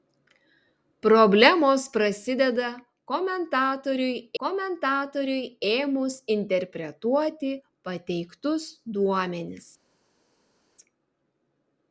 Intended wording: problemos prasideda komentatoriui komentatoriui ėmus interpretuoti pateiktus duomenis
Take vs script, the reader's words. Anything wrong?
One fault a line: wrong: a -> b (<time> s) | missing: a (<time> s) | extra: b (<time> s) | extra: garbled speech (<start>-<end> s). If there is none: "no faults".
no faults